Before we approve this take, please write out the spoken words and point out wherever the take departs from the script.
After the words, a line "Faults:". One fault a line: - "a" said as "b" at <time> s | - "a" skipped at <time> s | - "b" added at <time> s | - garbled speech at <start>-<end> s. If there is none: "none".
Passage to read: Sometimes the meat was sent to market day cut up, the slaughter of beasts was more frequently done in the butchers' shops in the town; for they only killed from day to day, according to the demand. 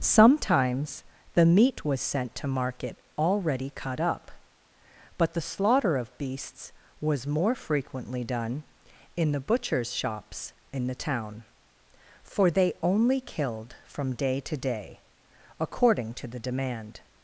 Sometimes the meat was sent to market already cut up, but the slaughter of beasts was more frequently done in the butchers' shops in the town; for they only killed from day to day, according to the demand.
Faults:
- "day" said as "already" at 3.2 s
- "but" added at 5.2 s